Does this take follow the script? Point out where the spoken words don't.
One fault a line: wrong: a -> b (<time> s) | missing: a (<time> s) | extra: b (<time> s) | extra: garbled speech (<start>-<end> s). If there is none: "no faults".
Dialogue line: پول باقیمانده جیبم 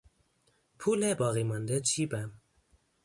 no faults